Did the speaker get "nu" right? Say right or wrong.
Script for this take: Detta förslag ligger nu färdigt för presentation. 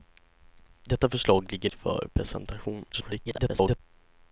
wrong